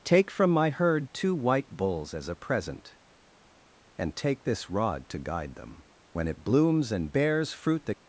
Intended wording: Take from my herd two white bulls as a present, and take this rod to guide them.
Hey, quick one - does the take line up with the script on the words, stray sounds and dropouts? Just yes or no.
no